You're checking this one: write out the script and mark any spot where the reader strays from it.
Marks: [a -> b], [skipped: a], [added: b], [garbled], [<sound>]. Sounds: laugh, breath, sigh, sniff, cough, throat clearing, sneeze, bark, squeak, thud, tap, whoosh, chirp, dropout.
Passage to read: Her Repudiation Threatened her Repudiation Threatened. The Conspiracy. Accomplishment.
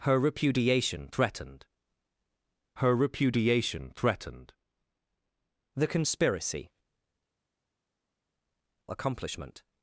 Her Repudiation Threatened her Repudiation Threatened. The Conspiracy. Accomplishment.